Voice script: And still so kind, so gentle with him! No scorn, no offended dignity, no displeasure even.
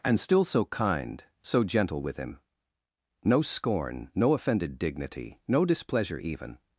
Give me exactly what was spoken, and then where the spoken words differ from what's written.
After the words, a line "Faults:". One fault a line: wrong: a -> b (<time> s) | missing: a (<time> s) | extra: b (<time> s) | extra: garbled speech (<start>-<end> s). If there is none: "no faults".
And still so kind, so gentle with him! No scorn, no offended dignity, no displeasure even.
Faults:
no faults